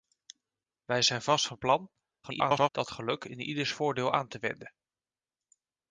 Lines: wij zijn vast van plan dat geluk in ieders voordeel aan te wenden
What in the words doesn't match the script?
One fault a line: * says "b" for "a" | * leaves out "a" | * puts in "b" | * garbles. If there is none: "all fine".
* garbles